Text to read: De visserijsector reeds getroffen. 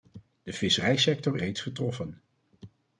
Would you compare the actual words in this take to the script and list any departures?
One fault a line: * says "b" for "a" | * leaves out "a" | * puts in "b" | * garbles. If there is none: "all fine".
all fine